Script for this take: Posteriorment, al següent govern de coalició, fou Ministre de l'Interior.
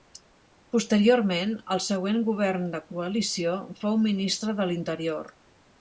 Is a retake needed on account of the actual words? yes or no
no